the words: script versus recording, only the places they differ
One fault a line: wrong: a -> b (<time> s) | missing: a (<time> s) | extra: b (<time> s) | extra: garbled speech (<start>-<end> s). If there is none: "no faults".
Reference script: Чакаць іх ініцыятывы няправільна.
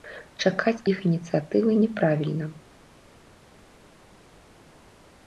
no faults